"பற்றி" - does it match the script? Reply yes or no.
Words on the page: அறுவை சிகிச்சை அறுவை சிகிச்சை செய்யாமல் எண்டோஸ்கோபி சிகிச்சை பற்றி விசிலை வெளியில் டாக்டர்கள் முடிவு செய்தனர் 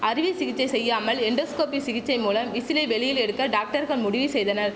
no